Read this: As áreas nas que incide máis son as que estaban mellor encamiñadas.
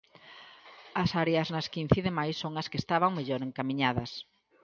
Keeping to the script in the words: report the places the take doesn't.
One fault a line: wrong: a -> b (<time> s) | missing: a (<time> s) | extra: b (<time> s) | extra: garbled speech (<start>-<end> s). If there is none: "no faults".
no faults